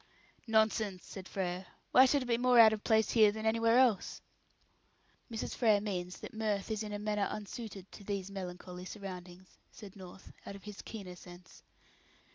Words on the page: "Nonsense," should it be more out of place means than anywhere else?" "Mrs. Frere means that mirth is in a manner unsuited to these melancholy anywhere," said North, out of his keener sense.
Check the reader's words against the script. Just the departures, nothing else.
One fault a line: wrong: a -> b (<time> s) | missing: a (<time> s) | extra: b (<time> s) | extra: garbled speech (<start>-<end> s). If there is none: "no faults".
extra: said Frere Why (1.1 s)
wrong: means -> here (3.1 s)
wrong: anywhere -> surroundings (8.9 s)